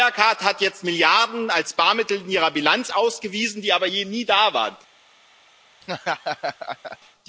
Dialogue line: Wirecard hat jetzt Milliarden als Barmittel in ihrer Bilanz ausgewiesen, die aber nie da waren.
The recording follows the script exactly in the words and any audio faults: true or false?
false